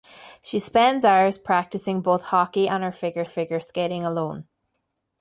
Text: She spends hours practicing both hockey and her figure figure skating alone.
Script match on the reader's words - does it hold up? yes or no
yes